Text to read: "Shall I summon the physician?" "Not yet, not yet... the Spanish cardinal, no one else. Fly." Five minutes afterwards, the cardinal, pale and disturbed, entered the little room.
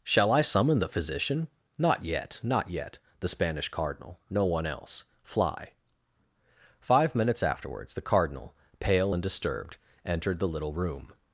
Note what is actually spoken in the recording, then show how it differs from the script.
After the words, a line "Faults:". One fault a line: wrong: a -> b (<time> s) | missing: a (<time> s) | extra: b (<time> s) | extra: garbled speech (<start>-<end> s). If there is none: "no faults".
"Shall I summon the physician?" "Not yet, not yet... the Spanish cardinal, no one else. Fly." Five minutes afterwards, the cardinal, pale and disturbed, entered the little room.
Faults:
no faults